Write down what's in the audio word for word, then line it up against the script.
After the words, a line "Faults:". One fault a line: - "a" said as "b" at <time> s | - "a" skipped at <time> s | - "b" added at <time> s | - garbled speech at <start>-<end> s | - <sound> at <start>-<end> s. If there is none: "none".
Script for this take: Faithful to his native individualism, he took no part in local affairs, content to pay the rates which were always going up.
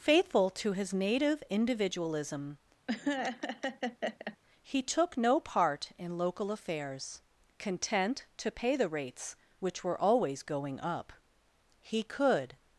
Faithful to his native individualism, he took no part in local affairs, content to pay the rates which were always going up. He could
Faults:
- laugh at 2.9-4.4 s
- "He could" added at 11.8 s